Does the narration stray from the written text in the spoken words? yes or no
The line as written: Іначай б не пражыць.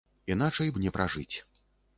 no